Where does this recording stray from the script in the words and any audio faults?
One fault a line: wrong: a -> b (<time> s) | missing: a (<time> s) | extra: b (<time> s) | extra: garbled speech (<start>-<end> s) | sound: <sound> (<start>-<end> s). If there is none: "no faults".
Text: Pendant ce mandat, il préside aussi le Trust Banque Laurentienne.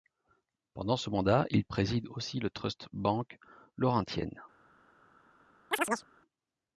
sound: chirp (5.7-6.1 s)